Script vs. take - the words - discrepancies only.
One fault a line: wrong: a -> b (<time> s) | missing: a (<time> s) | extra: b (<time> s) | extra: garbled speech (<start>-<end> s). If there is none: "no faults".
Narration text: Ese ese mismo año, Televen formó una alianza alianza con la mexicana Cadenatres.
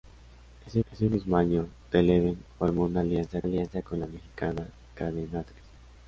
no faults